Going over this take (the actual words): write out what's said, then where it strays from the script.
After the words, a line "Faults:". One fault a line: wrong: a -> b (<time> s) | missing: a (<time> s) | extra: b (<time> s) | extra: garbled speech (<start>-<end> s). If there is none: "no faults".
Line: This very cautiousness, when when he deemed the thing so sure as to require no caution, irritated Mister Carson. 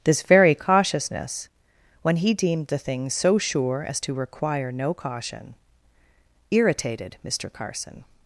This very cautiousness, when he deemed the thing so sure as to require no caution, irritated Mister Carson.
Faults:
missing: when (2.2 s)